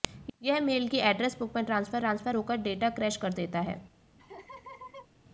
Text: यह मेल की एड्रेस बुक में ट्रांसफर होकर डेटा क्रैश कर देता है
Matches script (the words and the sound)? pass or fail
fail